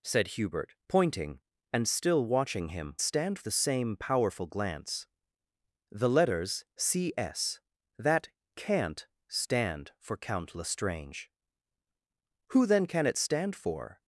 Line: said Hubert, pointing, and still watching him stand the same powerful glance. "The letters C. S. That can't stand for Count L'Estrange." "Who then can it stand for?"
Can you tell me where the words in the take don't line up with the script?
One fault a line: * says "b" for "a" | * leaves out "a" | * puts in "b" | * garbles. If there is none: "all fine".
all fine